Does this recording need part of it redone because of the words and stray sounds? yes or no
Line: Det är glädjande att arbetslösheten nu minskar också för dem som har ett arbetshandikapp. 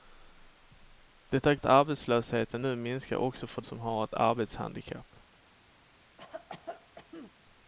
yes